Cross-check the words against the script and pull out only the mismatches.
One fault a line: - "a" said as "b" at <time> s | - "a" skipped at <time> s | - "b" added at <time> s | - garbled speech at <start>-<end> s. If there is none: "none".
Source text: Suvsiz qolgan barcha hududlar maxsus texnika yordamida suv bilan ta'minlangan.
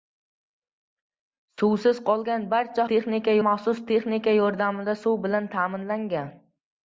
- "hududlar" said as "texnika" at 2.9 s